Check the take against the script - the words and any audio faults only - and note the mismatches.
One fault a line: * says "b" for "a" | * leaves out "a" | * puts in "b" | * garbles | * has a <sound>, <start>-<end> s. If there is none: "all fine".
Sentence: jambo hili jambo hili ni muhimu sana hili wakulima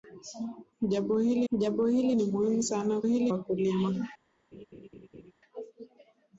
* has a laugh, 4.5-5.3 s